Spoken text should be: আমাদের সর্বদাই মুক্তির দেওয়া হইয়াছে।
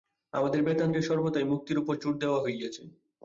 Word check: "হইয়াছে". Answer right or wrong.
right